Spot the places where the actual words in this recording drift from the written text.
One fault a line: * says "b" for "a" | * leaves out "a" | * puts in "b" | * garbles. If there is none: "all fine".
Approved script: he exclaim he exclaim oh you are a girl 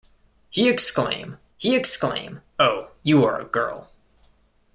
all fine